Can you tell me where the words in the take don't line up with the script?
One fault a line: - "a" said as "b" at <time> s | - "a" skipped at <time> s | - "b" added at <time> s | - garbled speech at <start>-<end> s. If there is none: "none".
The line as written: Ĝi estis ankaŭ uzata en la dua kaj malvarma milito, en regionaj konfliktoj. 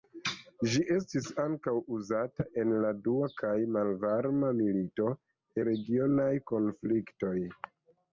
- "en" skipped at 5.1 s